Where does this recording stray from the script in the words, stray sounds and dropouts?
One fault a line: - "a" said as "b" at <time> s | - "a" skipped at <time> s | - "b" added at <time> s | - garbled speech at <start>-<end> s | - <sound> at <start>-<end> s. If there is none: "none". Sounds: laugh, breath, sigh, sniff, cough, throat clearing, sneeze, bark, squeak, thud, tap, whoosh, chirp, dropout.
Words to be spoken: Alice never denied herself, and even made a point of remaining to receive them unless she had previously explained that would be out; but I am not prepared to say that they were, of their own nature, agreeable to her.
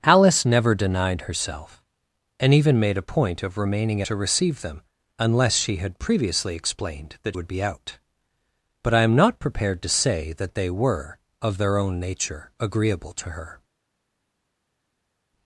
none